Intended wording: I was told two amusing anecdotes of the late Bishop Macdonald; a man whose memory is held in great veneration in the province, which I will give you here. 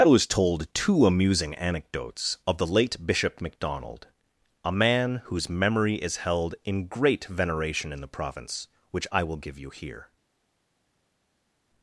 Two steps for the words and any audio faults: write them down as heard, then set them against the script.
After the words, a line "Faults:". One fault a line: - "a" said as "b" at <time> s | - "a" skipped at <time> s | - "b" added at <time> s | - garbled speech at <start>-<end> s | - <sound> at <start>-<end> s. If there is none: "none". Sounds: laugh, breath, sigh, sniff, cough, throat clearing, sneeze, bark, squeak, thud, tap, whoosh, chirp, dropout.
I was told two amusing anecdotes of the late Bishop Macdonald; a man whose memory is held in great veneration in the province, which I will give you here.
Faults:
none